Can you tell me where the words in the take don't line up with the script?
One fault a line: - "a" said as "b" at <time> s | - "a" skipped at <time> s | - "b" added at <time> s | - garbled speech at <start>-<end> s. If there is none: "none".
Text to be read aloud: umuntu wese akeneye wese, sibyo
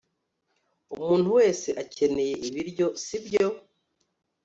- "wese" said as "ibiryo" at 2.5 s